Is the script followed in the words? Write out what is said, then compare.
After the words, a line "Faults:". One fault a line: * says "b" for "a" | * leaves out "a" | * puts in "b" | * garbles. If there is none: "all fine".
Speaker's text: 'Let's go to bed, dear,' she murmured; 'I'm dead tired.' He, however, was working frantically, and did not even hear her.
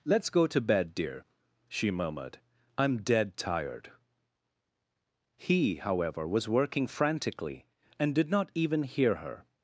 'Let's go to bed, dear,' she murmured; 'I'm dead tired.' He, however, was working frantically, and did not even hear her.
Faults:
all fine